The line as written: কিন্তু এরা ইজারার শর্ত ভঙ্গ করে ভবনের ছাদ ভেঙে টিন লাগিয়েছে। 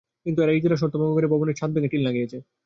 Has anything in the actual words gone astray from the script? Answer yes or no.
no